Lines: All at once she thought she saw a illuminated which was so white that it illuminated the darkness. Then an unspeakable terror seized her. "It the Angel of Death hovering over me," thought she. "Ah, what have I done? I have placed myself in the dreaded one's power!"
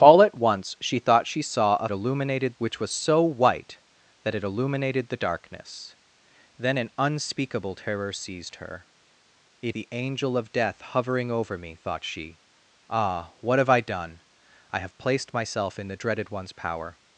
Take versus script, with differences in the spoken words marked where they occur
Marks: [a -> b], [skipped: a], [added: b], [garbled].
All at once she thought she saw a illuminated which was so white that it illuminated the darkness. Then an unspeakable terror seized her. "It the Angel of Death hovering over me," thought she. "Ah, what have I done? I have placed myself in the dreaded one's power!"